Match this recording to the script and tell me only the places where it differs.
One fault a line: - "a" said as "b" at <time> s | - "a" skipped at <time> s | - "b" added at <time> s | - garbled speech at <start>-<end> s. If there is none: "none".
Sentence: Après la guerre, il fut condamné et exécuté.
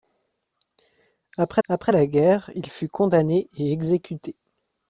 - "après" added at 1.7 s